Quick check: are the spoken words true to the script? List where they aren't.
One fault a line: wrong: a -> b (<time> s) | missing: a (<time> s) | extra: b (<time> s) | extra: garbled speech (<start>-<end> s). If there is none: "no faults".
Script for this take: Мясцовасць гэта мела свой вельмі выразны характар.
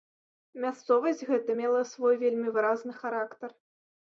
no faults